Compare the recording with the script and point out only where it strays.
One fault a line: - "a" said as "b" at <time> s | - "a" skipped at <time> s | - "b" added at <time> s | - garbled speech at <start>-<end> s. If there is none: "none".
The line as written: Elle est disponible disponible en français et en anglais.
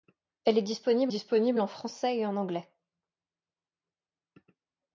none